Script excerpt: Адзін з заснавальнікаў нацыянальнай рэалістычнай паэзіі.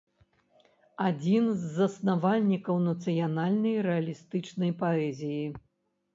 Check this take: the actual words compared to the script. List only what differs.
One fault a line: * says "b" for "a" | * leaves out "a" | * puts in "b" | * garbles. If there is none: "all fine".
all fine